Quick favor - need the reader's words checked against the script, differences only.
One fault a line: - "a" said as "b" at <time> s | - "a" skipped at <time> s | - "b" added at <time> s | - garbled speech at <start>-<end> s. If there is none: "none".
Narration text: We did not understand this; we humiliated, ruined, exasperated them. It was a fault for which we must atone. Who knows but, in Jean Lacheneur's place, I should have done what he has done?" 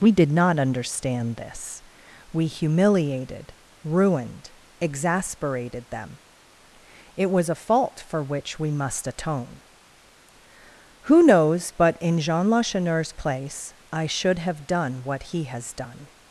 none